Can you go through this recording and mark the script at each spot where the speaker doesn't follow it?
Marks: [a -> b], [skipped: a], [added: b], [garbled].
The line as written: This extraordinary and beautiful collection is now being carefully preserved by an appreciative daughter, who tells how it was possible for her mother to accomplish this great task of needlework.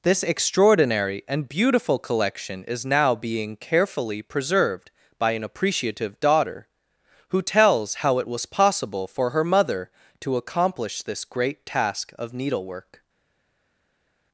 This extraordinary and beautiful collection is now being carefully preserved by an appreciative daughter, who tells how it was possible for her mother to accomplish this great task of needlework.